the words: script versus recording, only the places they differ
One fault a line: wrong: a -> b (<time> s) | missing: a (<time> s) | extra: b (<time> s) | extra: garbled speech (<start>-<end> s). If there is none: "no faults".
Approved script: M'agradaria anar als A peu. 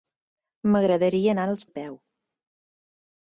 no faults